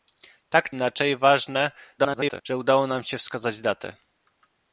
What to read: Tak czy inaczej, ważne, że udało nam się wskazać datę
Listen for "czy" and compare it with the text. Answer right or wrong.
wrong